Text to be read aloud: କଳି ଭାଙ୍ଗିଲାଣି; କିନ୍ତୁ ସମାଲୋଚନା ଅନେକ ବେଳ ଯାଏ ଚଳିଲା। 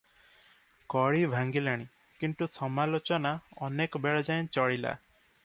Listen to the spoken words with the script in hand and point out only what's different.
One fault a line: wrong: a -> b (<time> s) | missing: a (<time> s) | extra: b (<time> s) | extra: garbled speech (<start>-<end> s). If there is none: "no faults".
no faults